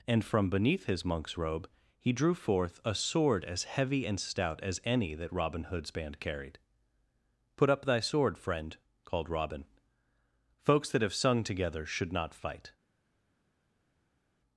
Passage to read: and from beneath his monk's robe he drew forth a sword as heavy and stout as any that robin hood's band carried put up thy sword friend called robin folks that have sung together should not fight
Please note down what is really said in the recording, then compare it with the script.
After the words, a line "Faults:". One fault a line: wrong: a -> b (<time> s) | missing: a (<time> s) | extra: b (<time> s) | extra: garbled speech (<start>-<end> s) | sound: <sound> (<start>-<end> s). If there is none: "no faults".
and from beneath his monk's robe he drew forth a sword as heavy and stout as any that robin hood's band carried put up thy sword friend called robin folks that have sung together should not fight
Faults:
no faults